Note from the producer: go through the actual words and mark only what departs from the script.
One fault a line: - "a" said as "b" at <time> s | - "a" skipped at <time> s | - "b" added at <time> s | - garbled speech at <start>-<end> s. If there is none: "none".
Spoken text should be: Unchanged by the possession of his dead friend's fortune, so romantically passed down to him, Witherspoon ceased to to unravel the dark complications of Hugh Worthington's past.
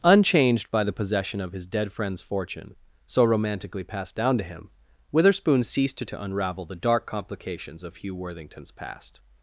none